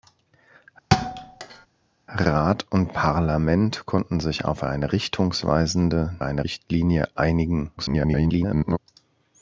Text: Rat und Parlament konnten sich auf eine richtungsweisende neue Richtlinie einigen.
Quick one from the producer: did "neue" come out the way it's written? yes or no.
no